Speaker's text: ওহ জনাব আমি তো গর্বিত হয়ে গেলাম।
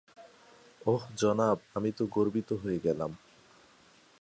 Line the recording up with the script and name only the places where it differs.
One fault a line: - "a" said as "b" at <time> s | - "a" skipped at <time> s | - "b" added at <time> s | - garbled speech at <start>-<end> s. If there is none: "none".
none